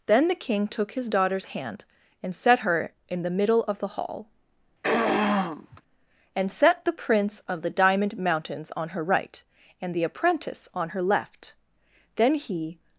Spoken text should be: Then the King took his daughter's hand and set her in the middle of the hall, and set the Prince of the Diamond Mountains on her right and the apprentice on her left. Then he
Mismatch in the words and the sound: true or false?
true